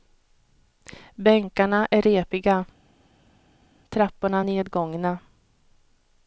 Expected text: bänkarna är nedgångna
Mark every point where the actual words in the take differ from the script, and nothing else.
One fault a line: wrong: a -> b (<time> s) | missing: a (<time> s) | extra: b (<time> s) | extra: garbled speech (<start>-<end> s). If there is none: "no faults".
extra: repiga trapporna (2.0 s)